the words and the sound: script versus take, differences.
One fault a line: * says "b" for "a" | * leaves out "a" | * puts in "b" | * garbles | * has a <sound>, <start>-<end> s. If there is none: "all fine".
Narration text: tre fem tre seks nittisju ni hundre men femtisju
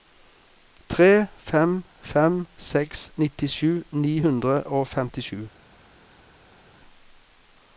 * says "fem" for "tre"
* says "og" for "men"